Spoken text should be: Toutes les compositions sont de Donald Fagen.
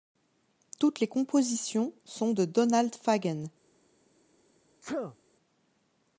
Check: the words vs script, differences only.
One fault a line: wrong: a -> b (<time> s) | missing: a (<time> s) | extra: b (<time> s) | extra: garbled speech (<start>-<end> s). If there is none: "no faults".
no faults